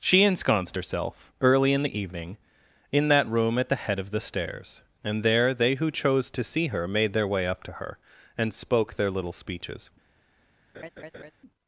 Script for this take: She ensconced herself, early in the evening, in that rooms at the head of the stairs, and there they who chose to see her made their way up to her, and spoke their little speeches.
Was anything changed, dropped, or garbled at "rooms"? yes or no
yes